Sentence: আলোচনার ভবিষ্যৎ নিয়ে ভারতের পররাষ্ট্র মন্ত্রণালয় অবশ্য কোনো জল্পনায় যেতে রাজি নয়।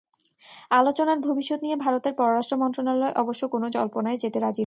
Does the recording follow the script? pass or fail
pass